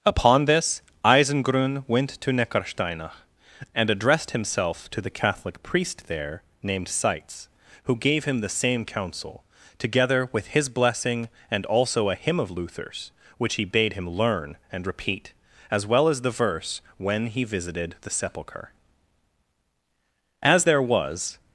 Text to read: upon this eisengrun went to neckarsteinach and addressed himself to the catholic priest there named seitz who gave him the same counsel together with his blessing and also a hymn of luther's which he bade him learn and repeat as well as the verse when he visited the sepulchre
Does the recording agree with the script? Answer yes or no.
no